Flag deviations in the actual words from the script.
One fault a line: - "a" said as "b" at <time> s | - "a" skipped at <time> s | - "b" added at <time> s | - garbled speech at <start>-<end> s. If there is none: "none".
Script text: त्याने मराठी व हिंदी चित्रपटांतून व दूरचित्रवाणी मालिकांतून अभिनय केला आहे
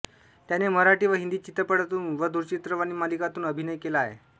none